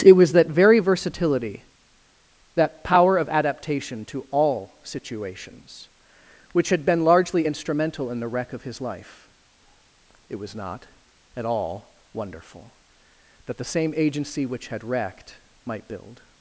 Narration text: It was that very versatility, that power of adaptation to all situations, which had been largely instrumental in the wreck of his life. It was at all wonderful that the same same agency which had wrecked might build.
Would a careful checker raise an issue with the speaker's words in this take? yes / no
yes